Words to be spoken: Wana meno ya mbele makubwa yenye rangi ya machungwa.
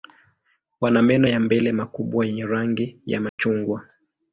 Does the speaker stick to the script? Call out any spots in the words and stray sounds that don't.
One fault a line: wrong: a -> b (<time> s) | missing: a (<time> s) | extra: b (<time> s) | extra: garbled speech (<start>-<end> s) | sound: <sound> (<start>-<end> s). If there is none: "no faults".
sound: dropout (3.3-3.4 s)